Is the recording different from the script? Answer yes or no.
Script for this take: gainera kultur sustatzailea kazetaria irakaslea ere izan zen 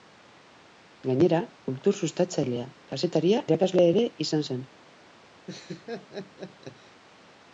no